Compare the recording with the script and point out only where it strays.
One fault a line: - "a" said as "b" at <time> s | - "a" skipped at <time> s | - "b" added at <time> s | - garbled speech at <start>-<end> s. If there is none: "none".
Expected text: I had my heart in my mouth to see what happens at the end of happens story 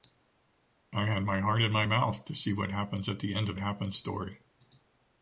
none